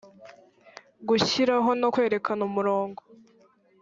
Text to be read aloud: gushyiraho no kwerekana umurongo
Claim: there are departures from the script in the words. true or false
false